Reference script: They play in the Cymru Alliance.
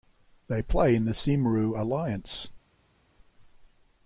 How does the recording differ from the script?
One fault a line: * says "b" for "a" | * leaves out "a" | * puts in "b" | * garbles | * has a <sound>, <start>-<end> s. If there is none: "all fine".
all fine